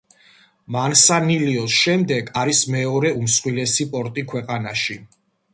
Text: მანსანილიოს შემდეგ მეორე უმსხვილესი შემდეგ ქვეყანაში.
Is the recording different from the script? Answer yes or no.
yes